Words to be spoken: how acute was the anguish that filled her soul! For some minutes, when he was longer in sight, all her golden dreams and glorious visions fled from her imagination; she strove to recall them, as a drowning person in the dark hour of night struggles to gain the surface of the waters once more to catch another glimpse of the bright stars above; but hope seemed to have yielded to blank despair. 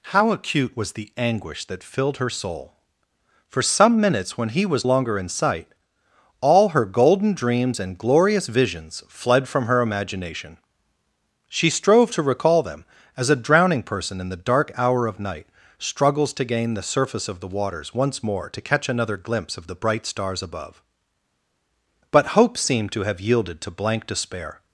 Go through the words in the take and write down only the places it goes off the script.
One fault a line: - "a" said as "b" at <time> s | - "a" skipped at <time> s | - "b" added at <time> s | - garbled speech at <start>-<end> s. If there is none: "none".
none